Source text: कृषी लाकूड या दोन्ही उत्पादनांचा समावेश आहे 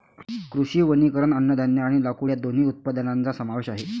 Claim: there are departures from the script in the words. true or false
true